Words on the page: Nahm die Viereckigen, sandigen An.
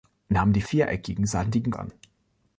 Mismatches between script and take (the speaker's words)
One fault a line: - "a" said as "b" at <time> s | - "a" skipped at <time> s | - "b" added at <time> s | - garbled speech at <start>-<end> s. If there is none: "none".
none